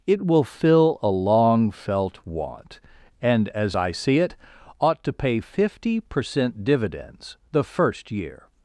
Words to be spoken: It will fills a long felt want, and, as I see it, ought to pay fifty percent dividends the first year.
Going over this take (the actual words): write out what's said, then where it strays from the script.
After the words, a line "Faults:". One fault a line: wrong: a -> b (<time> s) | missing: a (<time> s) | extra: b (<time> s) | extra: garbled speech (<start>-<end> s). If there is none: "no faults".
It will fill a long felt want, and, as I see it, ought to pay fifty percent dividends the first year.
Faults:
wrong: fills -> fill (0.4 s)